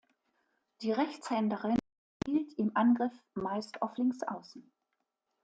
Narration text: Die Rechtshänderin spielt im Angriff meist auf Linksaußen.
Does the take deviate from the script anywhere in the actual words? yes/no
no